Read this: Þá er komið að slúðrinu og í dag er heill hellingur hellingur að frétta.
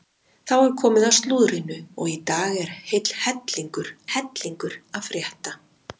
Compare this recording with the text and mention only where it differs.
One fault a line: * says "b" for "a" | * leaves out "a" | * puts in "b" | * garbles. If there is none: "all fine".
all fine